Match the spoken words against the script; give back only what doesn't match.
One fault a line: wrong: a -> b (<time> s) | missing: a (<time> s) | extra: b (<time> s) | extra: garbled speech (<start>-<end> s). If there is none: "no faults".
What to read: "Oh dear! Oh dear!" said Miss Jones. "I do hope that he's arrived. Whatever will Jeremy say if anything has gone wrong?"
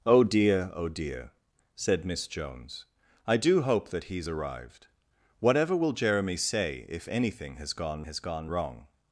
extra: has gone (8.0 s)